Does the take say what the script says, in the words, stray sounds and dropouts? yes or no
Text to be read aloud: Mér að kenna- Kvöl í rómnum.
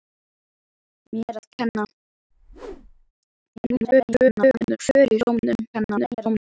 no